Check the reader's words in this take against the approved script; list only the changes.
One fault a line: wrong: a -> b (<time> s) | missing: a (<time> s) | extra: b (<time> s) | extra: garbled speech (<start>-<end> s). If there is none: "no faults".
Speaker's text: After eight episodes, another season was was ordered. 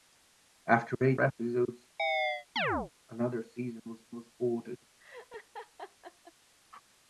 no faults